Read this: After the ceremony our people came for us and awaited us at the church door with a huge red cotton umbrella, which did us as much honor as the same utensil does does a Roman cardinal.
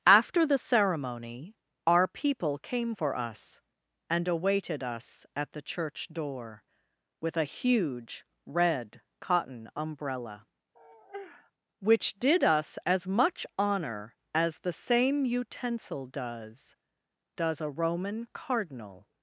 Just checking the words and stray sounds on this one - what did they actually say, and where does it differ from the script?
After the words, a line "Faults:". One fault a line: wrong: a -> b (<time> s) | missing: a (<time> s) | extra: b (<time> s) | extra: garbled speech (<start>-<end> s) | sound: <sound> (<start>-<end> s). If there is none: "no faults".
After the ceremony our people came for us and awaited us at the church door with a huge red cotton umbrella, which did us as much honor as the same utensil does does a Roman cardinal.
Faults:
sound: sigh (10.7-11.5 s)